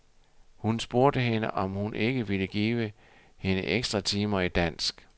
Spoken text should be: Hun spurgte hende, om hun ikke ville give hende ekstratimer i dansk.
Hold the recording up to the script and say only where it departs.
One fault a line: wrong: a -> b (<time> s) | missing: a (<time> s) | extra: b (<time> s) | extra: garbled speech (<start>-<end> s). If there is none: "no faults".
no faults